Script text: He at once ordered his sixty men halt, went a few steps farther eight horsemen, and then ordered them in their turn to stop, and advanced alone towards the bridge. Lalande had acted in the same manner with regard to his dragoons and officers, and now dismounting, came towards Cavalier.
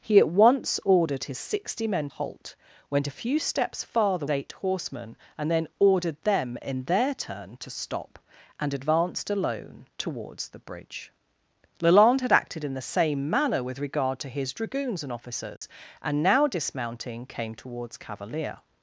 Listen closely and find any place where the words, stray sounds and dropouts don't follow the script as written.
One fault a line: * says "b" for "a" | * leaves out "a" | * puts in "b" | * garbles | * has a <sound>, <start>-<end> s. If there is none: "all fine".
* has a dropout, 15.6-15.6 s